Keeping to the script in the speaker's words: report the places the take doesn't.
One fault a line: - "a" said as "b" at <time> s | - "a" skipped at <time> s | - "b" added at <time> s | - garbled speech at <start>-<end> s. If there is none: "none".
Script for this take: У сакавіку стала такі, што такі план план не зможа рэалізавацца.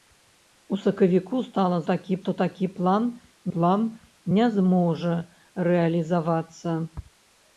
none